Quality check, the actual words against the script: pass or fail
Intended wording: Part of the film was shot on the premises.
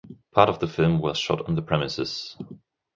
pass